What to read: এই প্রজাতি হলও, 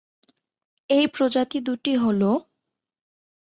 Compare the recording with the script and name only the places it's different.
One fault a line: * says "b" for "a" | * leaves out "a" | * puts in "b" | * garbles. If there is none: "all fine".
* puts in "দুটি"